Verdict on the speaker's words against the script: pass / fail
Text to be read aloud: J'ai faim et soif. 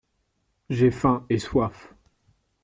pass